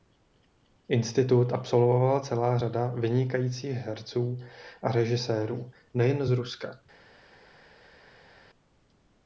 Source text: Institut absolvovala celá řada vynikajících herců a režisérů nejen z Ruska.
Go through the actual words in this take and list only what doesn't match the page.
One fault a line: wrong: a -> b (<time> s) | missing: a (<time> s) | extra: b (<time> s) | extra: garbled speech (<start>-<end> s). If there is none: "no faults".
no faults